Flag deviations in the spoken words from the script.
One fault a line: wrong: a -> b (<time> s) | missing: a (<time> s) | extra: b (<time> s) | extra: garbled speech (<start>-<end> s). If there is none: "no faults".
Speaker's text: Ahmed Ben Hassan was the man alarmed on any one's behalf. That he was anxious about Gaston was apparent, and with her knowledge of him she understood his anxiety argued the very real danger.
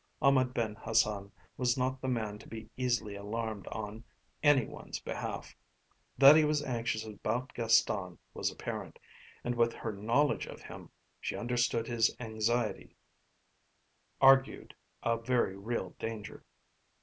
extra: not (1.8 s)
extra: to be easily (2.4 s)
wrong: the -> a (15.0 s)